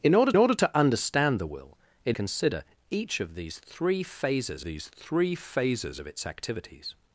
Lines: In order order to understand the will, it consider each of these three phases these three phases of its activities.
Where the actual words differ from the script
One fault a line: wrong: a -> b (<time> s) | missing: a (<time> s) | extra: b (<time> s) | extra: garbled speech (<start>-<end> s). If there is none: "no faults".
no faults